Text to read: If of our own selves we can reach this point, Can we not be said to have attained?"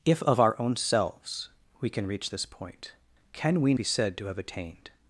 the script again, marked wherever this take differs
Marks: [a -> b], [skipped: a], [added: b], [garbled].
If of our own selves we can reach this point, Can we [skipped: not] be said to have attained?"